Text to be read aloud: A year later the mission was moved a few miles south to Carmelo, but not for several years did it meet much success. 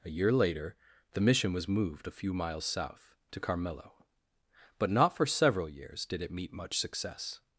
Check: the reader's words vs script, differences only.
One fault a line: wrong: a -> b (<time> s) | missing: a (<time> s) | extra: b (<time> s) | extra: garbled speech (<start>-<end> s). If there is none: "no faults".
no faults